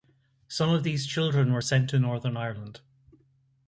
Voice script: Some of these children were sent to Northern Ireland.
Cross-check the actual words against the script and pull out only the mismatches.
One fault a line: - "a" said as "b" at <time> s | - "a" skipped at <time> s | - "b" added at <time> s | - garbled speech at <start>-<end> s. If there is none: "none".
none